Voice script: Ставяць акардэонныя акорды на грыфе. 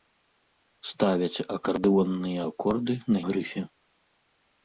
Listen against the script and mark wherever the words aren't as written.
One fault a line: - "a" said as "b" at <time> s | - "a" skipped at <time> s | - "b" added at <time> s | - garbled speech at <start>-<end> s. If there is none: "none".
none